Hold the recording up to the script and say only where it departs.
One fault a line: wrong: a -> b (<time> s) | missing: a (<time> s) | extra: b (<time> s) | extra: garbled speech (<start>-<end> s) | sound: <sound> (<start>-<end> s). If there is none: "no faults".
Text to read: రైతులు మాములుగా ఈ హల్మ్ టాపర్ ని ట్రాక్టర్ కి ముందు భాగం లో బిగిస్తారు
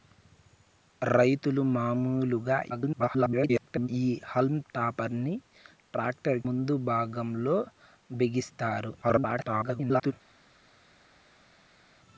extra: garbled speech (2.7-3.9 s)
missing: కి (6.4 s)
extra: garbled speech (9.0-10.1 s)